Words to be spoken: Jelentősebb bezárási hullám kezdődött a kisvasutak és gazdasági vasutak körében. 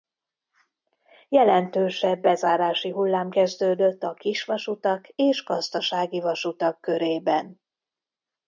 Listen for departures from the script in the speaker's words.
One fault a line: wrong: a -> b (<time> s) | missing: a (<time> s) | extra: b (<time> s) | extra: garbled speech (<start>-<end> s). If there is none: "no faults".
no faults